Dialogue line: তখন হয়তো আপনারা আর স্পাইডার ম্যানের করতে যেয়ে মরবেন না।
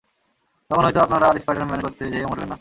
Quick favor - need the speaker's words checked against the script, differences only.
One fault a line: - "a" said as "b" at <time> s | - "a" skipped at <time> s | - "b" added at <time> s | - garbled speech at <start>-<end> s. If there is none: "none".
none